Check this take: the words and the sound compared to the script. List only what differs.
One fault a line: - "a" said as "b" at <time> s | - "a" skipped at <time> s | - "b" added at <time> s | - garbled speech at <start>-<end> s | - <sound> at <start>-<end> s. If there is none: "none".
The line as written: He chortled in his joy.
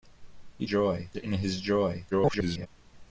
- "chortled" said as "joy" at 0.7 s
- garbled speech at 2.1-2.7 s